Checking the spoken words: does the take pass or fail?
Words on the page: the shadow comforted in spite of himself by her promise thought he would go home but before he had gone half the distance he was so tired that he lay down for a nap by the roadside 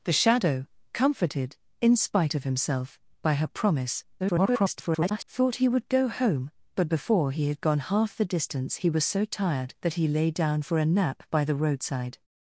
fail